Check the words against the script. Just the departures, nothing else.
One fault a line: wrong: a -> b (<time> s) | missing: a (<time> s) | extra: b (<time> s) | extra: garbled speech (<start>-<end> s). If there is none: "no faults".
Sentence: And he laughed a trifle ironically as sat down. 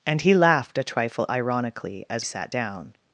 no faults